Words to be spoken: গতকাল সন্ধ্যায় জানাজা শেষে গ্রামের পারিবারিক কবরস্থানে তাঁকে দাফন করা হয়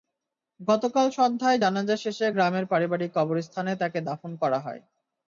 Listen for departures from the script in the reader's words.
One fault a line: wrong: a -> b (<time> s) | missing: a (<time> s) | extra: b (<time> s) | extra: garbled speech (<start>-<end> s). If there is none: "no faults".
no faults